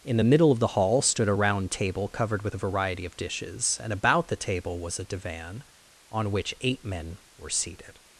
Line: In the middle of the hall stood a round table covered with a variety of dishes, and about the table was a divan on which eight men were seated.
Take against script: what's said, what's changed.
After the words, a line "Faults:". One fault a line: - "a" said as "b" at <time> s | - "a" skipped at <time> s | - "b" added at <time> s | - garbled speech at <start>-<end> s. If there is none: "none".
In the middle of the hall stood a round table covered with a variety of dishes, and about the table was a divan on which eight men were seated.
Faults:
none